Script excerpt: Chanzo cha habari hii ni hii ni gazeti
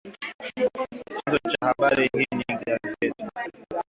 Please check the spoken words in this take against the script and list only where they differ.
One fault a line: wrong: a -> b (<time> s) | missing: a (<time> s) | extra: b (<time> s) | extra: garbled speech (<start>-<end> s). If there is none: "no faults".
missing: hii ni (2.6 s)